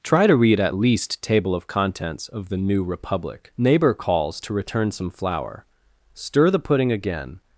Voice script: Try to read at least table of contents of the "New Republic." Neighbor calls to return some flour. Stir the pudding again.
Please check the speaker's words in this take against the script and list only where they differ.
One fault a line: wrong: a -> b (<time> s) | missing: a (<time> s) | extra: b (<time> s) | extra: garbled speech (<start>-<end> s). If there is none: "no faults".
no faults